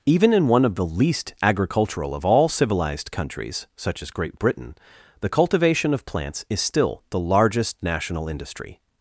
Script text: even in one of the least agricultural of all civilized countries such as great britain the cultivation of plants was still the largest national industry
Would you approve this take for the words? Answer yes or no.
no